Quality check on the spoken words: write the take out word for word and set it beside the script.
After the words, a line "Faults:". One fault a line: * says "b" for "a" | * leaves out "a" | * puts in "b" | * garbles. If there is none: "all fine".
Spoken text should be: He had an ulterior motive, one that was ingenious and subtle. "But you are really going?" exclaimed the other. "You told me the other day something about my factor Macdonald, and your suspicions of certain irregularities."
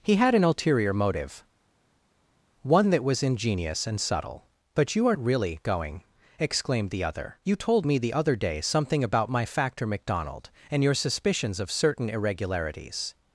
He had an ulterior motive, one that was ingenious and subtle. "But you are really going?" exclaimed the other. "You told me the other day something about my factor Macdonald, and your suspicions of certain irregularities."
Faults:
all fine